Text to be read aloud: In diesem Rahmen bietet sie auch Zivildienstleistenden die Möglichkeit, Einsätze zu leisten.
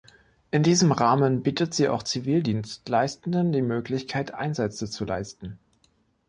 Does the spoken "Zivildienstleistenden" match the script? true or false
true